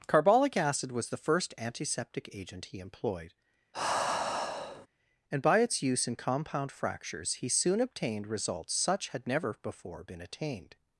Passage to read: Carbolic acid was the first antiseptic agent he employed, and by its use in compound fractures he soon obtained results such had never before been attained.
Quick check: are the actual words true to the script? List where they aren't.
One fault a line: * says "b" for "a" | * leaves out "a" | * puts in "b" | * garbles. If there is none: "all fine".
all fine